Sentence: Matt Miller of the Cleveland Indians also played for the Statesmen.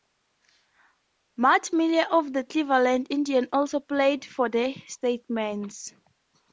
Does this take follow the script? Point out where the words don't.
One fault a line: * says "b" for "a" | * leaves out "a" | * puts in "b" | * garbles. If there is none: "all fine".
all fine